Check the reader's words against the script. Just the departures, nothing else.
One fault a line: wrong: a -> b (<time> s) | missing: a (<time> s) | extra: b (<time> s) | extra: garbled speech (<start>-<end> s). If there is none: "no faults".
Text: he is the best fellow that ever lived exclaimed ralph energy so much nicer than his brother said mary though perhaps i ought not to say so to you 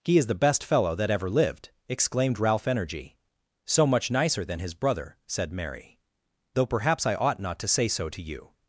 no faults